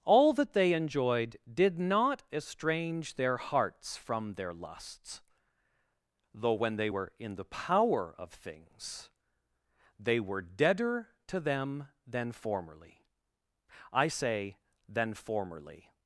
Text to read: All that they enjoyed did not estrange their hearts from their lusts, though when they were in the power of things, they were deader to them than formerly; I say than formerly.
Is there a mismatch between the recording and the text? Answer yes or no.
no